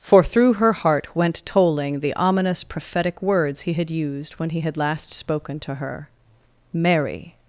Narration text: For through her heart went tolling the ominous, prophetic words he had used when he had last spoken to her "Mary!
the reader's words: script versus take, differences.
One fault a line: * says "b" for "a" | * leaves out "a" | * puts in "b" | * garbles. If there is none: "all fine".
all fine